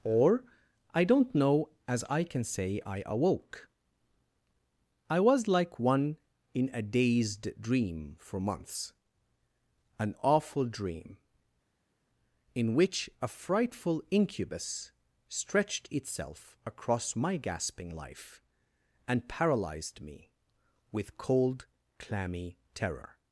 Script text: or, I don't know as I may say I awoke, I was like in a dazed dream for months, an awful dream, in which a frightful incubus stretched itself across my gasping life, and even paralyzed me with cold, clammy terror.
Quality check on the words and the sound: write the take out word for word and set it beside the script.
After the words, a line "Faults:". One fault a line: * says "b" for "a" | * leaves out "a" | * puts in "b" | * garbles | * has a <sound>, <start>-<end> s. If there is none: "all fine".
or, I don't know as I can say I awoke, I was like one in a dazed dream for months, an awful dream, in which a frightful incubus stretched itself across my gasping life, and paralyzed me with cold, clammy terror.
Faults:
* says "can" for "may"
* puts in "one"
* leaves out "even"